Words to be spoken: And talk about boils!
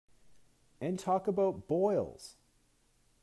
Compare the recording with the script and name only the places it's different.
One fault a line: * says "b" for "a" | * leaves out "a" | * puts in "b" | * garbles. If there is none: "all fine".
all fine